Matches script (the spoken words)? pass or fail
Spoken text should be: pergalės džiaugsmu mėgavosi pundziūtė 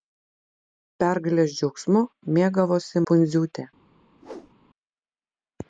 pass